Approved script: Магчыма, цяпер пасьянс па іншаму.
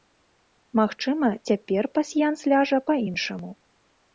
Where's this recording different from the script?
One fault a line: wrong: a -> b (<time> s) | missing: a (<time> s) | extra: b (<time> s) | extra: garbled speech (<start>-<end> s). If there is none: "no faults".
extra: ляжа (2.5 s)